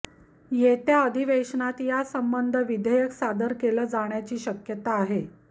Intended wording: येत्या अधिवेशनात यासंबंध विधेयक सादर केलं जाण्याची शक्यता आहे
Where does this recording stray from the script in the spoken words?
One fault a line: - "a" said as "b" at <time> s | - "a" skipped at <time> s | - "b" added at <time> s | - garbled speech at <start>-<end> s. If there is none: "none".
none